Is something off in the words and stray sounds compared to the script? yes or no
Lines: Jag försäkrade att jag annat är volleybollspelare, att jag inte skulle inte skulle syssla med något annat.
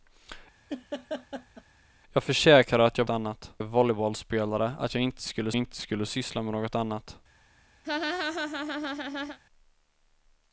yes